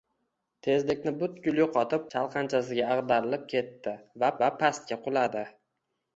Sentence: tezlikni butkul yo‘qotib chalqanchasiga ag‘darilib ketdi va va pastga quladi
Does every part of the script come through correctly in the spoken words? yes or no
yes